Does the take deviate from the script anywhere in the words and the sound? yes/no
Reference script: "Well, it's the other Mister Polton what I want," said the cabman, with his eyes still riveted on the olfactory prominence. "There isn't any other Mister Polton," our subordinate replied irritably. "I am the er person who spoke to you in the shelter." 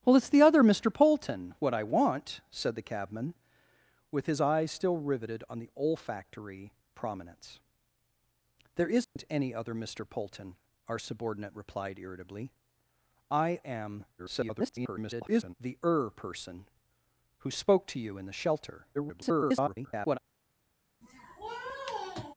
yes